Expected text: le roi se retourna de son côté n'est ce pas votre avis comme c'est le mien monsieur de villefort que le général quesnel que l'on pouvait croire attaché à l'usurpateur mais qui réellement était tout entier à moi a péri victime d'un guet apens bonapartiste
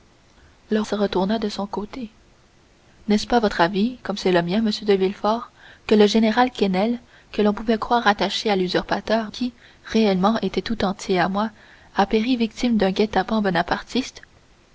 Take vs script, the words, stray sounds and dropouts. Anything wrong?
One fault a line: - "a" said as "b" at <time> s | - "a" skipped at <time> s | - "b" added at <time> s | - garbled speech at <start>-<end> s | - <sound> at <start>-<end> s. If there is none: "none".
- "roi" skipped at 0.8 s
- "mais" skipped at 9.3 s